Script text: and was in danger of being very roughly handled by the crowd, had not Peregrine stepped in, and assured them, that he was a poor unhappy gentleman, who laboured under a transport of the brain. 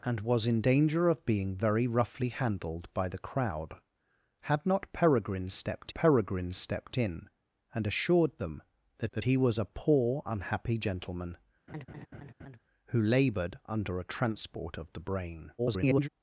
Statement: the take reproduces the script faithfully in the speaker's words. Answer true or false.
false